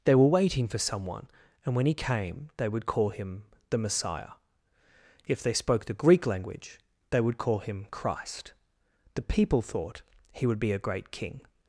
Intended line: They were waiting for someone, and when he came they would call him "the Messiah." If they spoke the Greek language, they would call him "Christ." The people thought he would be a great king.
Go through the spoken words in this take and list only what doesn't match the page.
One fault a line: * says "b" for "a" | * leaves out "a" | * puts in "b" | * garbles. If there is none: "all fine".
all fine